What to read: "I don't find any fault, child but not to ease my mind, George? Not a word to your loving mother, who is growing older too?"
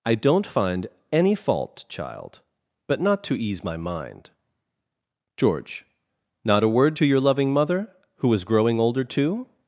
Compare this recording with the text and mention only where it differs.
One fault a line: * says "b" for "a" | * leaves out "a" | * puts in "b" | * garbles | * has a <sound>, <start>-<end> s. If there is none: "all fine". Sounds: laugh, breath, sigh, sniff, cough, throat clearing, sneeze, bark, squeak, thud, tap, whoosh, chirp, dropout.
all fine